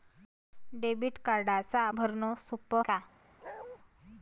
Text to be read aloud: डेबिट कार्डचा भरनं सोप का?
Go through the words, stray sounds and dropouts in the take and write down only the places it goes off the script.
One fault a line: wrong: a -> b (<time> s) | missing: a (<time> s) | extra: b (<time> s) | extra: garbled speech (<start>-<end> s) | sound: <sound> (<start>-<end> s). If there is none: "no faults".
sound: bark (3.4-3.8 s)